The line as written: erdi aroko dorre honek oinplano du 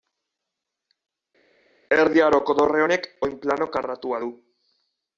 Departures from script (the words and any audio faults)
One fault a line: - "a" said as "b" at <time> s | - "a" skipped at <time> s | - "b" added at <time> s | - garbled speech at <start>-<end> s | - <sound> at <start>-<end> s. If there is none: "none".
- "karratua" added at 3.8 s